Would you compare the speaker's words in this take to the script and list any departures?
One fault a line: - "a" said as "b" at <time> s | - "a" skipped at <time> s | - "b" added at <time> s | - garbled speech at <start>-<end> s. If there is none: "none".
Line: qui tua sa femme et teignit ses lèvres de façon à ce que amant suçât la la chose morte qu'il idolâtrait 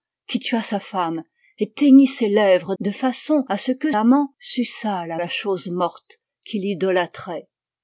none